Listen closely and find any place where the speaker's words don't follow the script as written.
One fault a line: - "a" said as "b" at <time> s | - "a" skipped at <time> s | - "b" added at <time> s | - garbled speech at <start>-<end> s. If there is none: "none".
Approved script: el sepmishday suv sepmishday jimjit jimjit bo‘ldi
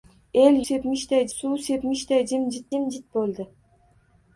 none